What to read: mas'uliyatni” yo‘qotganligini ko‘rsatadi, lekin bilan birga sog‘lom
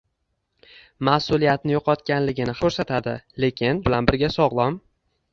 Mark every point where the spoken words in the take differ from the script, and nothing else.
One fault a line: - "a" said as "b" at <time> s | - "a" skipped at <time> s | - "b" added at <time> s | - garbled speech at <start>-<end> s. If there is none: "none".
none